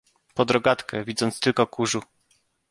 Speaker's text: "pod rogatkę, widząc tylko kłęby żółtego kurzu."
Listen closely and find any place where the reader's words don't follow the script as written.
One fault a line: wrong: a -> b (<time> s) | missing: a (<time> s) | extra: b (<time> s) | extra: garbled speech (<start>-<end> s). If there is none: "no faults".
missing: kłęby żółtego (1.7 s)